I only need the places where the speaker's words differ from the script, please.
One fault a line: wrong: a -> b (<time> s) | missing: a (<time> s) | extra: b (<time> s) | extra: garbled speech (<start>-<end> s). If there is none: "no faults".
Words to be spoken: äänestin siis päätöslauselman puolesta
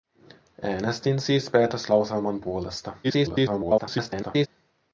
extra: garbled speech (3.0-4.5 s)